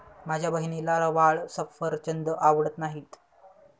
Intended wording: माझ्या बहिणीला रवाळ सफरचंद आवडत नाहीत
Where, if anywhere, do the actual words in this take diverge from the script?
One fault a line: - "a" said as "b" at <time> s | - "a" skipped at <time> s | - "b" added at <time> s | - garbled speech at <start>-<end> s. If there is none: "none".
none